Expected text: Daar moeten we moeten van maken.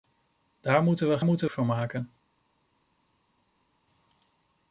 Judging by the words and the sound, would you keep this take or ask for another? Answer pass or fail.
pass